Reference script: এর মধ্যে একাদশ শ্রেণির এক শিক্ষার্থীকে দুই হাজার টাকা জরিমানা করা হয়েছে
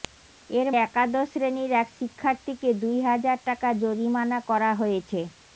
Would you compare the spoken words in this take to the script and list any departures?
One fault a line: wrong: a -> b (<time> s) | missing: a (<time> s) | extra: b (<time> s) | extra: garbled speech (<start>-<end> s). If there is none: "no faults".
missing: মধ্যে (0.7 s)